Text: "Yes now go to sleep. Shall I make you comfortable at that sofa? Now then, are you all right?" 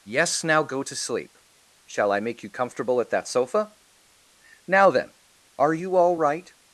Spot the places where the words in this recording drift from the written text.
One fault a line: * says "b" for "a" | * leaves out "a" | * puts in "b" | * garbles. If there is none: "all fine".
all fine